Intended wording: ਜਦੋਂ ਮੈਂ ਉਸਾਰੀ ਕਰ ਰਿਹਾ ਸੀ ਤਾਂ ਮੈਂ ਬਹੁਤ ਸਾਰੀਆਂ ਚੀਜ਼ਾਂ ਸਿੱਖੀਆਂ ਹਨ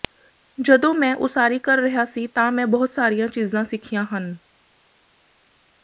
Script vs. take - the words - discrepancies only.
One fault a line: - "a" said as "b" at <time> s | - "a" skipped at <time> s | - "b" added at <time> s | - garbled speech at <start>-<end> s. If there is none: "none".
none